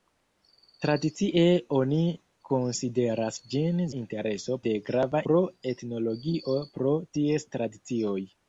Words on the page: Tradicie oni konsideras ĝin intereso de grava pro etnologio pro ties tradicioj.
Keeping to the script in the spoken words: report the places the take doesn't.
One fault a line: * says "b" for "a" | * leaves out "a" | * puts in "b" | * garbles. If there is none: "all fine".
all fine